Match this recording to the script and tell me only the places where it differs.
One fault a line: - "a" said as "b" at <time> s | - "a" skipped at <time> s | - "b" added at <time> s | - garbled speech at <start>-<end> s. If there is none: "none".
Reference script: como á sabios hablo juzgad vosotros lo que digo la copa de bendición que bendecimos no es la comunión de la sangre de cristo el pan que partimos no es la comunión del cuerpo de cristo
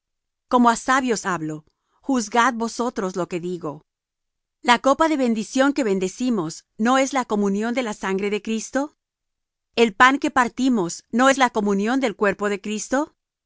none